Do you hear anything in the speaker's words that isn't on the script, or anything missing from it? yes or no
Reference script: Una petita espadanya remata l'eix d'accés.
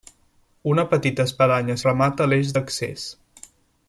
no